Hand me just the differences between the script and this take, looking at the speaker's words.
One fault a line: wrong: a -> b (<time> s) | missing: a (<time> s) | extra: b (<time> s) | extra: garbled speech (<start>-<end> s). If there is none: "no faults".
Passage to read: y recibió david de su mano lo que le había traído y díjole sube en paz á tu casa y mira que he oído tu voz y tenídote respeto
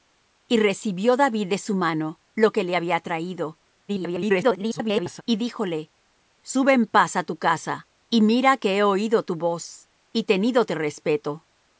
extra: garbled speech (3.9-5.2 s)